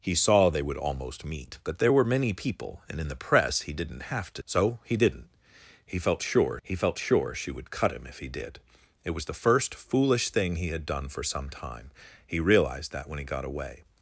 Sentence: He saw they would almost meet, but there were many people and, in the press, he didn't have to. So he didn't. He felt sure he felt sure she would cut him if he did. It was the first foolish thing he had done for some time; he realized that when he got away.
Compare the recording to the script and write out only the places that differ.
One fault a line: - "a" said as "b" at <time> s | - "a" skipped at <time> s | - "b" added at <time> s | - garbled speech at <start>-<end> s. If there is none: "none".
none